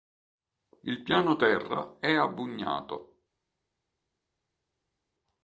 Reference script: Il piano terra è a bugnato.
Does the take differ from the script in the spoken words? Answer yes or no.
no